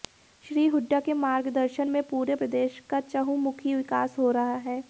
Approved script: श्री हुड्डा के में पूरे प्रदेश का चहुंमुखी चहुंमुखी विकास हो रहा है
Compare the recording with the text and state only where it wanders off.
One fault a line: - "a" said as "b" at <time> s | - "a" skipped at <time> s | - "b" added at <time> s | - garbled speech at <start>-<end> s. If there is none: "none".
- "मार्गदर्शन" added at 1.1 s
- "चहुंमुखी" skipped at 3.7 s